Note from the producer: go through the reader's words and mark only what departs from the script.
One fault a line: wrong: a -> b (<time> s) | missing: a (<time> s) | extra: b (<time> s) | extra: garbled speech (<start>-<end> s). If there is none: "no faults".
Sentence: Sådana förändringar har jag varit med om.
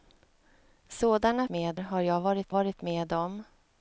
wrong: förändringar -> med (1.5 s)
extra: varit (2.5 s)